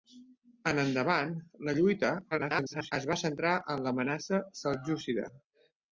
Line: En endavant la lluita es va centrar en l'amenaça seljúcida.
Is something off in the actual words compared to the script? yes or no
yes